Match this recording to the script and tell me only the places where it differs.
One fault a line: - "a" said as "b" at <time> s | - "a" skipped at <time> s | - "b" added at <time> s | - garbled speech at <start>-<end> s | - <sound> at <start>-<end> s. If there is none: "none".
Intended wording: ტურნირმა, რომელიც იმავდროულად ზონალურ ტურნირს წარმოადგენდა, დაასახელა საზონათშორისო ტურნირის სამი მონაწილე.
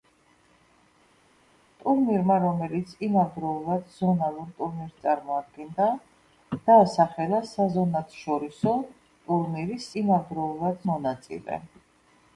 - "სამი" said as "იმავდროულად" at 10.0 s